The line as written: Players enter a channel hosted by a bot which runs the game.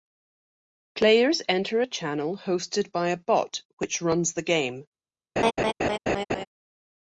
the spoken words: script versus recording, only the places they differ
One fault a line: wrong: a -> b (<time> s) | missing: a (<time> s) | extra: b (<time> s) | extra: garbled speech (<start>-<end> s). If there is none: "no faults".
no faults